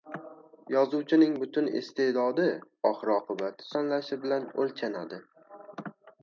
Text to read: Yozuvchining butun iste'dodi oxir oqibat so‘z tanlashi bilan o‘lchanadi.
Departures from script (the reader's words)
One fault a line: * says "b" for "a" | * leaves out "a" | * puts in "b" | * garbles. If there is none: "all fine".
* leaves out "so‘z"